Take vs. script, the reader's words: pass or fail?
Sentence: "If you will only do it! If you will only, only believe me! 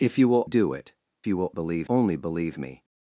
fail